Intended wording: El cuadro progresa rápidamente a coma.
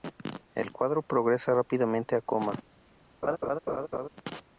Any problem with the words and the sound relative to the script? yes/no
yes